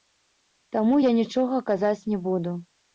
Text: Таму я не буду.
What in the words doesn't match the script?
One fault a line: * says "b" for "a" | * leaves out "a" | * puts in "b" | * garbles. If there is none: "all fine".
* puts in "нічога казаць"